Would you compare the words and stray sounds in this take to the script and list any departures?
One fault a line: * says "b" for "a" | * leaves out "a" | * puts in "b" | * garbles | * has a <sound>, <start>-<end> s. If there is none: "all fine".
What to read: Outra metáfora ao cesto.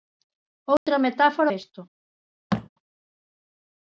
* has a dropout, 0.8-0.9 s
* leaves out "ao"
* has a thud, 2.5-2.7 s